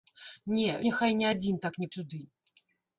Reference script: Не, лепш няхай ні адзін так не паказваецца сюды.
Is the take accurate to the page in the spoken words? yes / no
no